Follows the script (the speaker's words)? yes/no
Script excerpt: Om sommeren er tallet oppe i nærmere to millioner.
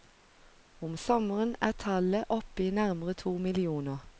yes